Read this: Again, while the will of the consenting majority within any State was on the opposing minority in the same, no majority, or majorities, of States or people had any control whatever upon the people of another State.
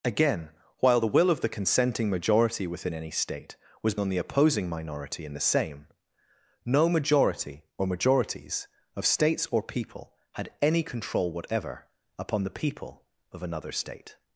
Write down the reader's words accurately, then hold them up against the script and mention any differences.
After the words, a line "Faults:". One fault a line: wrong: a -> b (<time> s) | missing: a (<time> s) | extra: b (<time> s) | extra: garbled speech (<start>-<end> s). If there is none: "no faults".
Again, while the will of the consenting majority within any State was on the opposing minority in the same, no majority, or majorities, of States or people had any control whatever upon the people of another State.
Faults:
no faults